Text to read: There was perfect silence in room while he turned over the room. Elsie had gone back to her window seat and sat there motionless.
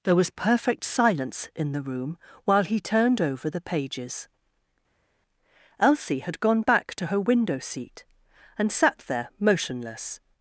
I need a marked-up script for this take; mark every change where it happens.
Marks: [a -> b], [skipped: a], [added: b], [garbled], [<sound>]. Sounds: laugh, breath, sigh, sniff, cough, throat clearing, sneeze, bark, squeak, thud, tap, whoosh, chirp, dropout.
There was perfect silence in [added: the] room while he turned over the [room. -> pages] Elsie had gone back to her window seat and sat there motionless.